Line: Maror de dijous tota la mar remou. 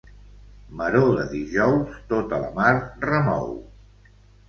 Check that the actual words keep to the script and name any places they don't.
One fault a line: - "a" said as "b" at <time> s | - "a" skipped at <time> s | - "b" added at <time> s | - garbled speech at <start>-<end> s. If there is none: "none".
none